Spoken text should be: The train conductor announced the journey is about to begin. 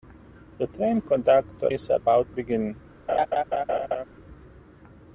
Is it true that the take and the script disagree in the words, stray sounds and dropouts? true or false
true